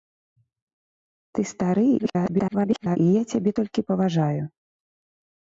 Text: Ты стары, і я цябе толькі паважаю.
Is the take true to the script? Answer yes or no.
no